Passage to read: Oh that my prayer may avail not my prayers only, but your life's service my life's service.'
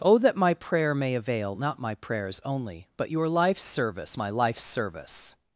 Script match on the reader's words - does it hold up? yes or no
yes